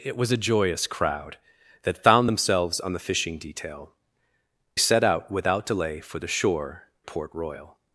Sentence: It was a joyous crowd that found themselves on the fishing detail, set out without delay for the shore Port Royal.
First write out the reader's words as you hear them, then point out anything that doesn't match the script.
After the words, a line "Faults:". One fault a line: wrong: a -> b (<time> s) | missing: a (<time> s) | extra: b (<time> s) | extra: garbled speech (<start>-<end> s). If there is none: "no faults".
It was a joyous crowd that found themselves on the fishing detail, set out without delay for the shore Port Royal.
Faults:
no faults